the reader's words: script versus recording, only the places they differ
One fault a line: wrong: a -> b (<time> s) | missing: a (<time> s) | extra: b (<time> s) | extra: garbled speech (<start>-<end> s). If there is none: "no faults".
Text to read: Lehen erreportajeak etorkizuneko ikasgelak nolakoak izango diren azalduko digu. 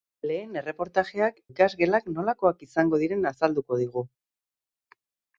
missing: etorkizuneko (1.4 s)